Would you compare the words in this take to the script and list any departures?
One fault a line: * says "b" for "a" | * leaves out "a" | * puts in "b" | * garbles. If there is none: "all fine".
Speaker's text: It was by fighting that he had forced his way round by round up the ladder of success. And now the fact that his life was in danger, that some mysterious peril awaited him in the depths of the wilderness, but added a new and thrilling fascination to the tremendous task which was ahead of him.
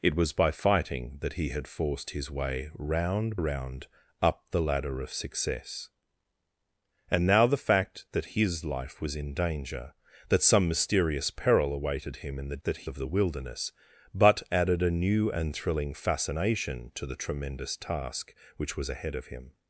* leaves out "by"
* says "that" for "depths"